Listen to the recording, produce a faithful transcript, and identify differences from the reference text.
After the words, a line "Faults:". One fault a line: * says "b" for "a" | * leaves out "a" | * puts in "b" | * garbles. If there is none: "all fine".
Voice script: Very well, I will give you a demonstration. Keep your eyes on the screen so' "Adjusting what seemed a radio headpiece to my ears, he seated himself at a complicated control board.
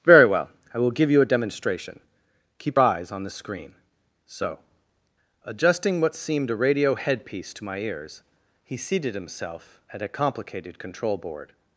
Very well, I will give you a demonstration. Keep eyes on the screen so' "Adjusting what seemed a radio headpiece to my ears, he seated himself at a complicated control board.
Faults:
* leaves out "your"